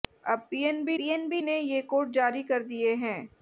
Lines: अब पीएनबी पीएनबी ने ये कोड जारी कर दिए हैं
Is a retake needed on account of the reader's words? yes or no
no